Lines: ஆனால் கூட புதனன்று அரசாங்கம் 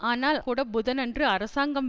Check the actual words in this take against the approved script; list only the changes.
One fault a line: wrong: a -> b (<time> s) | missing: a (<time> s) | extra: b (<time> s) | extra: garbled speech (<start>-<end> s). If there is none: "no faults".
no faults